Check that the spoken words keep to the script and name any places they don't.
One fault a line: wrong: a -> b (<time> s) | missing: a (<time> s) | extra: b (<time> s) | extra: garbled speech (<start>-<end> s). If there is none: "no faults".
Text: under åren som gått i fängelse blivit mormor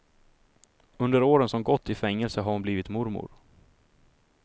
extra: har hon (2.4 s)